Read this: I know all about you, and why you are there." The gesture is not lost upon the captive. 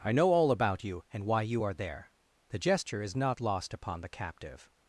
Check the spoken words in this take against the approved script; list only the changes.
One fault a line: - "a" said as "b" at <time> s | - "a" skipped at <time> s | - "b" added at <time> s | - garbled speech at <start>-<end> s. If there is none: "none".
none